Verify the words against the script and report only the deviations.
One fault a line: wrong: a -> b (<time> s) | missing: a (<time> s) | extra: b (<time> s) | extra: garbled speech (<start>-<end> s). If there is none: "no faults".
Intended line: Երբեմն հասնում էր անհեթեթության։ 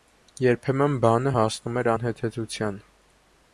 extra: բանը (1.0 s)